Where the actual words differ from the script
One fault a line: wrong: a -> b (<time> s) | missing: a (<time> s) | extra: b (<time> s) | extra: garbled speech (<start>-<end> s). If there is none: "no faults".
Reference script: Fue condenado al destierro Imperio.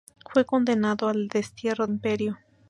no faults